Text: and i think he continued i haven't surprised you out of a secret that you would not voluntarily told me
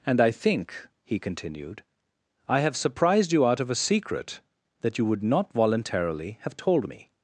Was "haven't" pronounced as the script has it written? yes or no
no